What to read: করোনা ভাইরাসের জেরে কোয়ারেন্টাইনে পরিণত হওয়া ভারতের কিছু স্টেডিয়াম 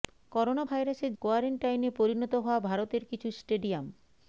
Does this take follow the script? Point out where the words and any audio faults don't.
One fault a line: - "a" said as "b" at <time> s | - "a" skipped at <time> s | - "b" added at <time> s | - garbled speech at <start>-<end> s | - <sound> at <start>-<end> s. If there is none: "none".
- "জেরে" skipped at 1.1 s